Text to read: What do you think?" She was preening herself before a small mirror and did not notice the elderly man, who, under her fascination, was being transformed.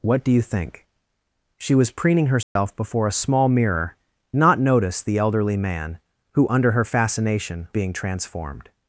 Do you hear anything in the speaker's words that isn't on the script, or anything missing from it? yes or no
yes